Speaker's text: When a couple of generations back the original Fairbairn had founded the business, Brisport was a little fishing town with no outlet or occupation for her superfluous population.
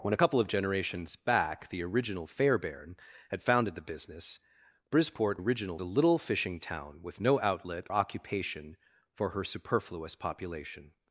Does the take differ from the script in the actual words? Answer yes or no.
yes